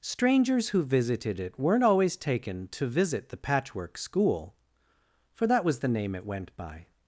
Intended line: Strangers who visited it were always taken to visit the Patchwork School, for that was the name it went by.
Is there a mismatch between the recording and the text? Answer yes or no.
yes